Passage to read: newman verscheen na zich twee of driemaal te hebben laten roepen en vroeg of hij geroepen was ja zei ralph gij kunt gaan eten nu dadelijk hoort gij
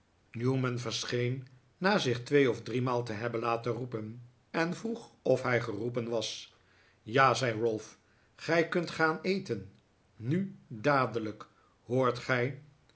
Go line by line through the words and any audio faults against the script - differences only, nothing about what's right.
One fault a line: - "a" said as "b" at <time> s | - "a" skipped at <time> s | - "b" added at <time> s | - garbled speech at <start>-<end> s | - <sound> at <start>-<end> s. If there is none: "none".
none